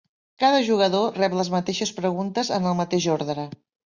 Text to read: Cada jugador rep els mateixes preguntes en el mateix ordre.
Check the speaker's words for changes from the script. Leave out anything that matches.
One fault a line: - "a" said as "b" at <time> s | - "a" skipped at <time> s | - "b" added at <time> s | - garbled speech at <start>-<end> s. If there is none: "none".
- "els" said as "les" at 1.4 s